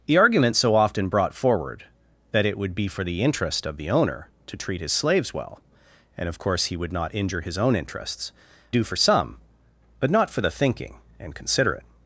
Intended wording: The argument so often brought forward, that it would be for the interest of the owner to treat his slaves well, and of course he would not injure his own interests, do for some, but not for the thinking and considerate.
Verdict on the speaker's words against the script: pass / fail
pass